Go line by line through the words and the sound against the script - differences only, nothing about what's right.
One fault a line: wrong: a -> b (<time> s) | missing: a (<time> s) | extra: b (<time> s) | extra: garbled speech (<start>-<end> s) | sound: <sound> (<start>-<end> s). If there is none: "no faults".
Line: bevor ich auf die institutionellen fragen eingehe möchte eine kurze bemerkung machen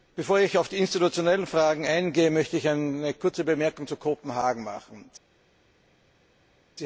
extra: ich (2.6 s)
extra: zu kopenhagen (3.9 s)